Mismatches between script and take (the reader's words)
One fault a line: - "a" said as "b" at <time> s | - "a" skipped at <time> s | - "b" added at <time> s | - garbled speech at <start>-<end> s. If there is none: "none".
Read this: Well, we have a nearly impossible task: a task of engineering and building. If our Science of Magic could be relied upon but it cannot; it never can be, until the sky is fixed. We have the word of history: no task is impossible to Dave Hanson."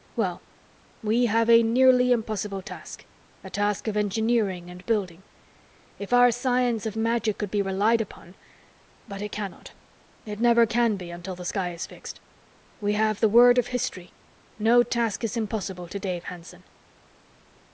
none